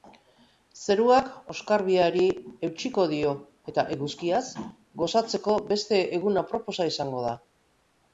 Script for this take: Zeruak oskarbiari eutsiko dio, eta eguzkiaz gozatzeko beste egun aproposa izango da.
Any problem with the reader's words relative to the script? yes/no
no